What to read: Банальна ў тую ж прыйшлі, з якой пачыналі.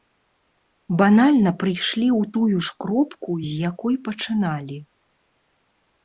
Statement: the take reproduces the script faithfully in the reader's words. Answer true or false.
false